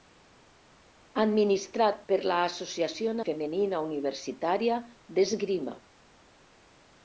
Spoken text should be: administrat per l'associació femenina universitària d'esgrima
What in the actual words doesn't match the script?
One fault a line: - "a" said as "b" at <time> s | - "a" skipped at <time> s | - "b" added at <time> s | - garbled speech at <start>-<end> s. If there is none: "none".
none